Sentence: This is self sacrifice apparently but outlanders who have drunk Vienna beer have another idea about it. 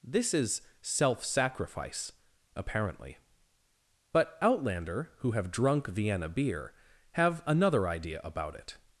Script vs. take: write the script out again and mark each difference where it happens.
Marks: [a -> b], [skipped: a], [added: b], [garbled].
This is self sacrifice apparently but [outlanders -> outlander] who have drunk Vienna beer have another idea about it.